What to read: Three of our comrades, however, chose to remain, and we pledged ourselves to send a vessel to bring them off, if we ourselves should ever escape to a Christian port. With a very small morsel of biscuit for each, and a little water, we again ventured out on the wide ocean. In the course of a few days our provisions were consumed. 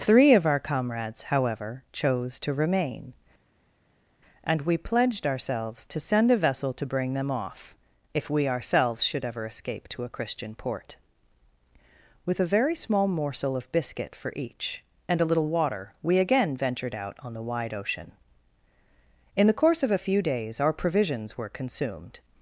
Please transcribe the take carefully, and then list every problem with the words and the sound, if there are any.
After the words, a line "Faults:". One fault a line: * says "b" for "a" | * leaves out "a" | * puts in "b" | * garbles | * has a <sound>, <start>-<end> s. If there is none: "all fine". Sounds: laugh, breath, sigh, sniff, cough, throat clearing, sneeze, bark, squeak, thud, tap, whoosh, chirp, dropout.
Three of our comrades, however, chose to remain, and we pledged ourselves to send a vessel to bring them off, if we ourselves should ever escape to a Christian port. With a very small morsel of biscuit for each, and a little water, we again ventured out on the wide ocean. In the course of a few days our provisions were consumed.
Faults:
all fine